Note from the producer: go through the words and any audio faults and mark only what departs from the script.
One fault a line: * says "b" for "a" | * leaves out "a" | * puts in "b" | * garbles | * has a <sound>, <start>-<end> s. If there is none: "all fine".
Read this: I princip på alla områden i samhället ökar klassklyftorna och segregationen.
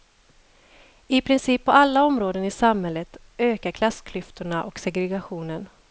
all fine